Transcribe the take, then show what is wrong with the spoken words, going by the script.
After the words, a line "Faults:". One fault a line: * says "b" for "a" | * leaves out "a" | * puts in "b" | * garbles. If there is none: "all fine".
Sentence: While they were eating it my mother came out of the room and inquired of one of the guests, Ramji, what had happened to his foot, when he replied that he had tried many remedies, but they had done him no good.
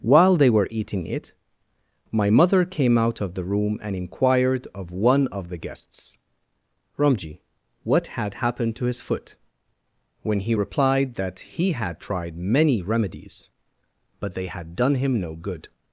While they were eating it my mother came out of the room and inquired of one of the guests, Ramji, what had happened to his foot, when he replied that he had tried many remedies, but they had done him no good.
Faults:
all fine